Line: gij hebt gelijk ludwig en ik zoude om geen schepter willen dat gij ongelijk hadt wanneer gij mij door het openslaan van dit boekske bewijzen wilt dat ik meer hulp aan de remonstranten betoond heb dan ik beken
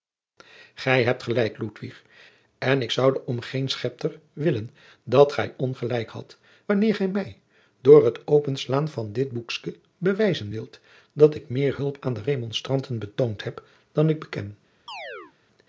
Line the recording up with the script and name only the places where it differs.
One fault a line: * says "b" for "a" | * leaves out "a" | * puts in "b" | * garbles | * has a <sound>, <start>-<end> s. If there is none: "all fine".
* has a chirp, 14.9-15.3 s